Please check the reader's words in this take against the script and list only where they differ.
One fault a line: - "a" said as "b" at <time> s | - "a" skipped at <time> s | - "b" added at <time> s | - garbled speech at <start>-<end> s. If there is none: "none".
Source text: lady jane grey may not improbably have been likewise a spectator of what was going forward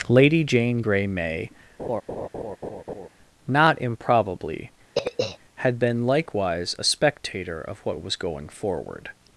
- "have" said as "had" at 5.5 s